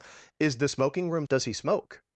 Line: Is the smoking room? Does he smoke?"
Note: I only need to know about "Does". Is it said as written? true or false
true